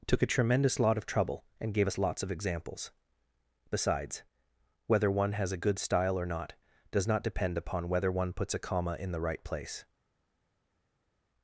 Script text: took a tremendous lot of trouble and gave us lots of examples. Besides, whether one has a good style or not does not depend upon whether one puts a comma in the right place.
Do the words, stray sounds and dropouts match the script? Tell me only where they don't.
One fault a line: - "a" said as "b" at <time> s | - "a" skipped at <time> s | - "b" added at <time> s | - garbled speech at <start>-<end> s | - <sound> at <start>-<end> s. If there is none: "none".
none